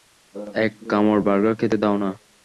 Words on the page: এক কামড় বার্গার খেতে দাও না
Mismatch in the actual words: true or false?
false